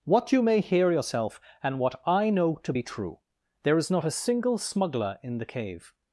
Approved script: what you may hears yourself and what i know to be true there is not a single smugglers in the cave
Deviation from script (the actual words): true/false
true